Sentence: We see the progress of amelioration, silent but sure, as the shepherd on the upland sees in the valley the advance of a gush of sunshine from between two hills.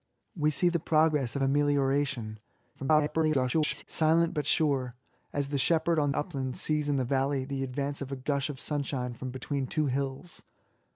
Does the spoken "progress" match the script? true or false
true